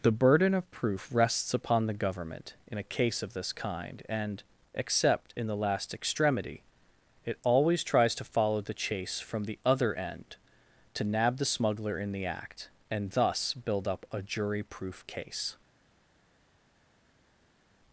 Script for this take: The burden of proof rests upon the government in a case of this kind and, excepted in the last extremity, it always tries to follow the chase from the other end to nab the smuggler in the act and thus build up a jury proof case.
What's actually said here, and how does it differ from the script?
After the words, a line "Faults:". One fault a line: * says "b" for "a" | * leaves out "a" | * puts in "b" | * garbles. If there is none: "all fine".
The burden of proof rests upon the government in a case of this kind and, except in the last extremity, it always tries to follow the chase from the other end to nab the smuggler in the act and thus build up a jury proof case.
Faults:
* says "except" for "excepted"